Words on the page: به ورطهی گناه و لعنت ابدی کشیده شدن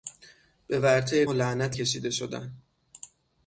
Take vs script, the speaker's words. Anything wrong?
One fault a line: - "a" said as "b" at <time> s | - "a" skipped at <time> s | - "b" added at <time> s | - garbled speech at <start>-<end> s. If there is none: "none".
- "گناه" skipped at 1.2 s
- "ابدی" skipped at 1.8 s